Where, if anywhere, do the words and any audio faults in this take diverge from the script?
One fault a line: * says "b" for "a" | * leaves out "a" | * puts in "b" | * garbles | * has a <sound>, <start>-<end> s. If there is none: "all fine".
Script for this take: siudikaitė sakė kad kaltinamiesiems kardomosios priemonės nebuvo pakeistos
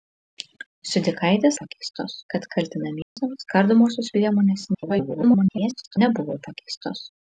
* says "pakeistos" for "sakė"
* has a dropout, 3.0-3.2 s
* garbles